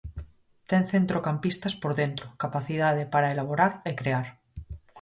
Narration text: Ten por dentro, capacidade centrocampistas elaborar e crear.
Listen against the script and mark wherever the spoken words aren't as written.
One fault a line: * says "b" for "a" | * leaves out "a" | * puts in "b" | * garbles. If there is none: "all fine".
* puts in "centrocampistas"
* says "para" for "centrocampistas"